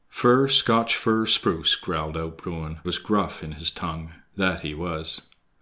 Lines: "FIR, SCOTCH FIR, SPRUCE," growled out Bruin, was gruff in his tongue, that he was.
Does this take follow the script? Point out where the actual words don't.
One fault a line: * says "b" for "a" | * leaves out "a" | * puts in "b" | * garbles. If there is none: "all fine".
all fine